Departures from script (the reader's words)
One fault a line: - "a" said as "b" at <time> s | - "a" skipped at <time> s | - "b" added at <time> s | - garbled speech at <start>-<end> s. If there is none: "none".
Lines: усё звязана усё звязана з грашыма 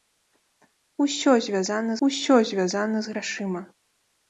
none